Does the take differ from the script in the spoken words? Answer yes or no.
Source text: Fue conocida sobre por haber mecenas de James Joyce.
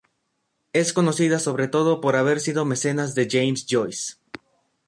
yes